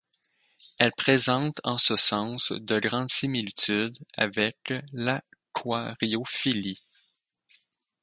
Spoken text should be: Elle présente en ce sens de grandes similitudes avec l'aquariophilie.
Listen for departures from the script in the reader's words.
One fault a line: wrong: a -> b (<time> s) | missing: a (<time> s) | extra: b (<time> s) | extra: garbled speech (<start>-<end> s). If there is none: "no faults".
no faults